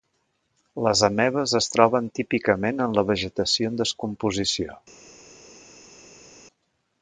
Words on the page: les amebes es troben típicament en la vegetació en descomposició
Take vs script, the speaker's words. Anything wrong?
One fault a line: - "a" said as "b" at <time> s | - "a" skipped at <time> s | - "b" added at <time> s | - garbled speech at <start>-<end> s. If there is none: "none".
none